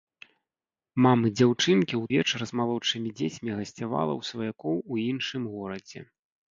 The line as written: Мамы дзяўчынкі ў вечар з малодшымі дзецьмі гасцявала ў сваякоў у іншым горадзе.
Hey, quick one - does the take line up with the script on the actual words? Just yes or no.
yes